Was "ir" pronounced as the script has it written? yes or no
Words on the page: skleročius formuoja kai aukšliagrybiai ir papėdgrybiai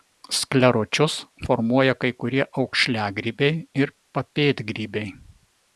yes